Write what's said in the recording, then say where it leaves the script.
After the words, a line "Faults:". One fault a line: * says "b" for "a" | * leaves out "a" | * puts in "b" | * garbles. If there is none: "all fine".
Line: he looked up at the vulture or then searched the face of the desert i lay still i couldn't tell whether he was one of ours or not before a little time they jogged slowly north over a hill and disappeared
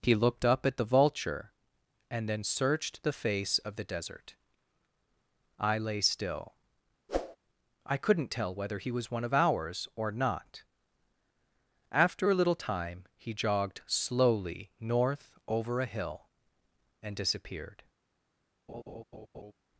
he looked up at the vulture and then searched the face of the desert i lay still i couldn't tell whether he was one of ours or not after a little time he jogged slowly north over a hill and disappeared
Faults:
* says "and" for "or"
* says "after" for "before"
* says "he" for "they"